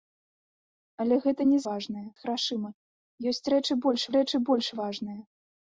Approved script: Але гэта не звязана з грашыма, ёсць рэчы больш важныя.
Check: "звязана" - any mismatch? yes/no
yes